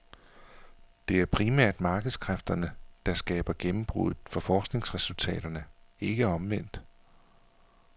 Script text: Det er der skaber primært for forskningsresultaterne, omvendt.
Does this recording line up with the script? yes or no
no